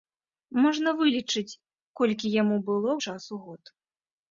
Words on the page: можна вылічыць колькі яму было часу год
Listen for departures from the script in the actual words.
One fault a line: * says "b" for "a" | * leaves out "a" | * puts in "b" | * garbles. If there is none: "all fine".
all fine